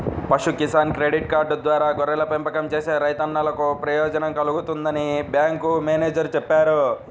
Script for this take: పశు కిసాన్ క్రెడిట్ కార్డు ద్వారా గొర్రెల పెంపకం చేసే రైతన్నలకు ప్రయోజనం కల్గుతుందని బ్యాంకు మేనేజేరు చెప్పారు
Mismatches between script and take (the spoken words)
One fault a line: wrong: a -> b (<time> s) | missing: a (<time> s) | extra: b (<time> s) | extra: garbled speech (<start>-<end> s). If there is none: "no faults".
no faults